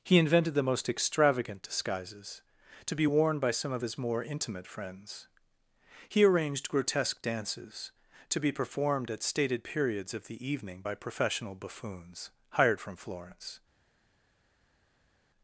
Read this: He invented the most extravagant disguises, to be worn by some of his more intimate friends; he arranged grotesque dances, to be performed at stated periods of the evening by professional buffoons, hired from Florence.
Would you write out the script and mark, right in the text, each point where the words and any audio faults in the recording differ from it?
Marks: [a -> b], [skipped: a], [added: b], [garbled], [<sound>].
He invented the most extravagant disguises, to be worn by some of his more intimate friends; he arranged grotesque dances, to be performed at stated periods of the evening by professional buffoons, hired from Florence.